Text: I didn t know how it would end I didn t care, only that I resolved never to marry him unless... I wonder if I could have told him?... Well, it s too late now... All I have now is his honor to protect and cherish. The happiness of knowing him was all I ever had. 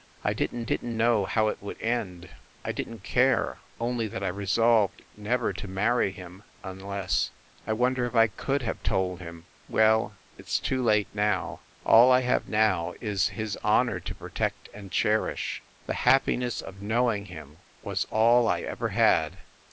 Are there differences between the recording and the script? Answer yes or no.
yes